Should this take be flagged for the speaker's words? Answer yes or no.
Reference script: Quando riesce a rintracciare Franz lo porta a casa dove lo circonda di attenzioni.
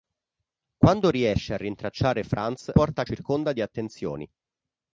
yes